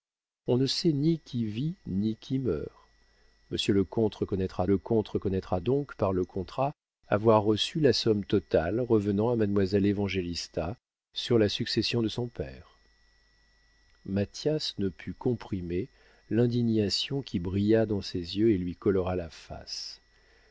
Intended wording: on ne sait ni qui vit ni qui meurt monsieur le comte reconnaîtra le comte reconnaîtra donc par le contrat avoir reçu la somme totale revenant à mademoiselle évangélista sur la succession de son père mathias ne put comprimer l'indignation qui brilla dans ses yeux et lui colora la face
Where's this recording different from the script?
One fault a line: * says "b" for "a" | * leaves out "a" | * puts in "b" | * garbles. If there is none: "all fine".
all fine